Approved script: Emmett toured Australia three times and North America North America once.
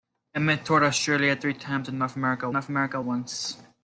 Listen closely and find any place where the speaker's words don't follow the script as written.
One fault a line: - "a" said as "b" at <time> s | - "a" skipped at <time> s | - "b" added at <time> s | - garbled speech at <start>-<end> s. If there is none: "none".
none